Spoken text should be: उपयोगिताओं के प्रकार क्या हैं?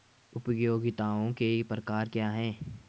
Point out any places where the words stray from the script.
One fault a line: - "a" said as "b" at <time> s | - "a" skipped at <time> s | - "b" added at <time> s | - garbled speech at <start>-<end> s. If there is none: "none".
none